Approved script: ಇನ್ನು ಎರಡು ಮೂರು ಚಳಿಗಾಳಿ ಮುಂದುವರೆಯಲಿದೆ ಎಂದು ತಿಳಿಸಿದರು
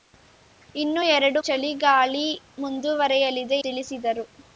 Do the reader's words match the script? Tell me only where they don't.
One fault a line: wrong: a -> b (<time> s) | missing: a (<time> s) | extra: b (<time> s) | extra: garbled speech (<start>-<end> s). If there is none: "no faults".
missing: ಮೂರು (1.4 s)
missing: ಎಂದು (3.6 s)